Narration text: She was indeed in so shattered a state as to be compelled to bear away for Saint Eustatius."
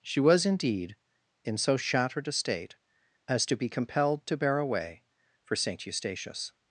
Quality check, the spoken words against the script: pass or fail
pass